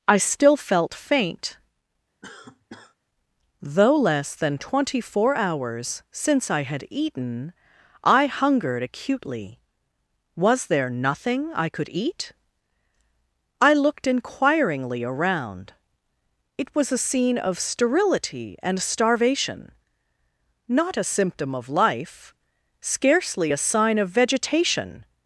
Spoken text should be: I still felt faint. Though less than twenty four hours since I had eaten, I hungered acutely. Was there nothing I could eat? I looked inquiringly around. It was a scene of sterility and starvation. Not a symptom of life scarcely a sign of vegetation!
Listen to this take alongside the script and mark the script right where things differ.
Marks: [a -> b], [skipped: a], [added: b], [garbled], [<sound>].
I still felt faint. [cough] Though less than twenty four hours since I had eaten, I hungered acutely. Was there nothing I could eat? I looked inquiringly around. It was a scene of sterility and starvation. Not a symptom of life scarcely a sign of vegetation!